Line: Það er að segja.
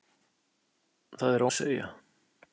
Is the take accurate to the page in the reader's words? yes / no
yes